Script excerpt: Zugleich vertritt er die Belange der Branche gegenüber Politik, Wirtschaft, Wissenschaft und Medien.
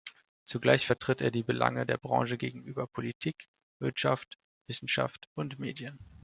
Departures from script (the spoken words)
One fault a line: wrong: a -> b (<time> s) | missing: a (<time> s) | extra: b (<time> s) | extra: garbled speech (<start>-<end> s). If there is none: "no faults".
no faults